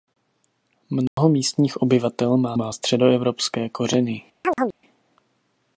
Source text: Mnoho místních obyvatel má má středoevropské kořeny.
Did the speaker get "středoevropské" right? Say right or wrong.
right